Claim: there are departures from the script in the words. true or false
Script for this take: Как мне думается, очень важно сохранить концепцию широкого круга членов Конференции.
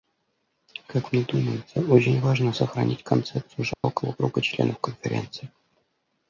false